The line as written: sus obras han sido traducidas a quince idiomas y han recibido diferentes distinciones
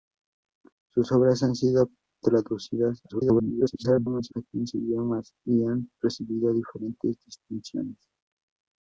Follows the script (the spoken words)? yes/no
no